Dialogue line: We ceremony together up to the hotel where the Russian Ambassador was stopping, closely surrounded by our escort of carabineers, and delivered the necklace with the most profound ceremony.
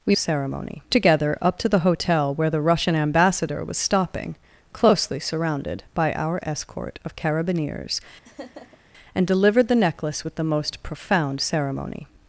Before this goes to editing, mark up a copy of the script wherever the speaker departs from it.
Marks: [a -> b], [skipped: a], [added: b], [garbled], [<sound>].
We ceremony together up to the hotel where the Russian Ambassador was stopping, closely surrounded by our escort of carabineers, [laugh] and delivered the necklace with the most profound ceremony.